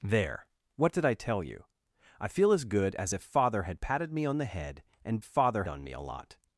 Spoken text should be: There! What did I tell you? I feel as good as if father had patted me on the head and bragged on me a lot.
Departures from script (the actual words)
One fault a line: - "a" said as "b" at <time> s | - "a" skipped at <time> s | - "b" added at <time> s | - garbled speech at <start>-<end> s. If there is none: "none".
- "bragged" said as "father" at 5.2 s